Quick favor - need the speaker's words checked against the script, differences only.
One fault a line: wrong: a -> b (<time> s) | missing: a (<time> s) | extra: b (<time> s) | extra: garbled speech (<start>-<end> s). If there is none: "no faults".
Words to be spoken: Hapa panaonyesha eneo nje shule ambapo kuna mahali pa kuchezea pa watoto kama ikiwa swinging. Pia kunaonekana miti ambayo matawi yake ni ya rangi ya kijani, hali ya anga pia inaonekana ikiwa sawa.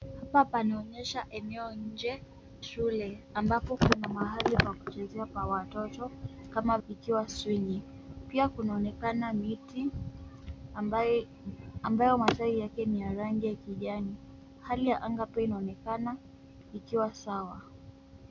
no faults